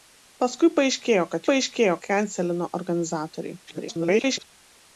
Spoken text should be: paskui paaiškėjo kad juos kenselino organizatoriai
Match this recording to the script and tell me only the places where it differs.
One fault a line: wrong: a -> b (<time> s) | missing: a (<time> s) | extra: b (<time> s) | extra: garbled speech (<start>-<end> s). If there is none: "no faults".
wrong: juos -> paaiškėjo (1.5 s)
extra: garbled speech (3.7-4.5 s)